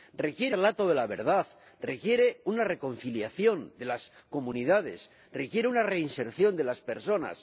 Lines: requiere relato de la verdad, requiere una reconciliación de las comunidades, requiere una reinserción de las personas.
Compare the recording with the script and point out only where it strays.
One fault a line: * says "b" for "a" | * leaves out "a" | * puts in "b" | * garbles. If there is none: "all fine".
all fine